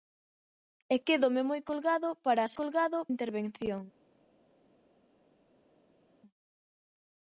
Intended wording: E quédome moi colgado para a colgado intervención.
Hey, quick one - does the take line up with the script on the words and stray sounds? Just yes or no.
yes